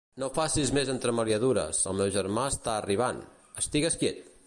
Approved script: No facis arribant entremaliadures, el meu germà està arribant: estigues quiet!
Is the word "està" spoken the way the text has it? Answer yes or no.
yes